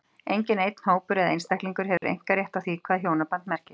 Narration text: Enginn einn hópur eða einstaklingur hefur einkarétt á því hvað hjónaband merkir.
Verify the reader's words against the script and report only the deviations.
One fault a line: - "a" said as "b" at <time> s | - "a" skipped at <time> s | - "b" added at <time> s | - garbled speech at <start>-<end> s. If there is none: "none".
none